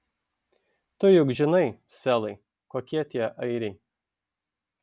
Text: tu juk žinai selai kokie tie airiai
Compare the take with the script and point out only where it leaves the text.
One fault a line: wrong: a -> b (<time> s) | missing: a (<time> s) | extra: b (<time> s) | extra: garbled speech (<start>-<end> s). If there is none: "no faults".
no faults